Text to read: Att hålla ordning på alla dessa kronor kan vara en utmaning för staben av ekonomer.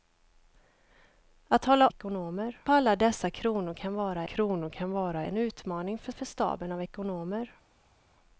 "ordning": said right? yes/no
no